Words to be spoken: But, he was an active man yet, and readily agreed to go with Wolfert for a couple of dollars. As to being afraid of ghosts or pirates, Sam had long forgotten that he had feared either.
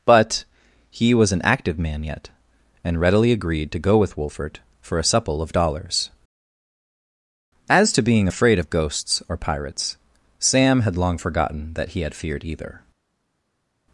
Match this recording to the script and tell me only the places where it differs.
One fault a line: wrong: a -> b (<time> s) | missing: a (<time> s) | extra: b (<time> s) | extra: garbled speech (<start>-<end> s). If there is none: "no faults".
wrong: couple -> supple (5.0 s)